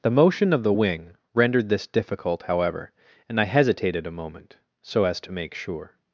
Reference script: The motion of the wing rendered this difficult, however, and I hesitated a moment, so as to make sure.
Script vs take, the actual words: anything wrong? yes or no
no